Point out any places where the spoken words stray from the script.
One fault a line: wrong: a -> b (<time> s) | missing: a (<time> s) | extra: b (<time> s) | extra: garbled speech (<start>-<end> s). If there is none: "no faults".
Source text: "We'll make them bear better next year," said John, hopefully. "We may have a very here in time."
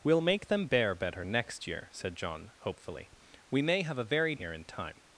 no faults